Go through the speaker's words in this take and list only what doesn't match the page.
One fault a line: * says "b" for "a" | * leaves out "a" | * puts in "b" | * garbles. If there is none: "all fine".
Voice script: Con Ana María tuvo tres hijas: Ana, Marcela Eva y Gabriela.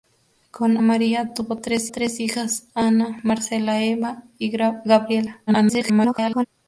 * leaves out "Ana"
* puts in "tres"
* garbles